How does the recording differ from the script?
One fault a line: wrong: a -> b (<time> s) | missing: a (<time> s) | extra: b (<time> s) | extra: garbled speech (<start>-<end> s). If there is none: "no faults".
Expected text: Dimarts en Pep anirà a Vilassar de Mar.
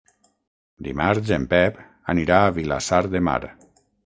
no faults